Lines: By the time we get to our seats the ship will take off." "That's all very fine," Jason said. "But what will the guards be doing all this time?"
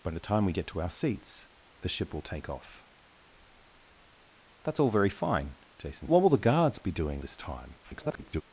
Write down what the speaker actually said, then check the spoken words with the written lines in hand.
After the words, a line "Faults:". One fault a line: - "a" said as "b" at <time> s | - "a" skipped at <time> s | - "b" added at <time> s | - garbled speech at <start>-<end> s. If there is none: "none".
By the time we get to our seats the ship will take off." "That's all very fine," Jason what will the guards be doing this time?" [garbled]
Faults:
- "said But" skipped at 6.1 s
- "all" skipped at 7.2 s
- garbled speech at 7.8-8.4 s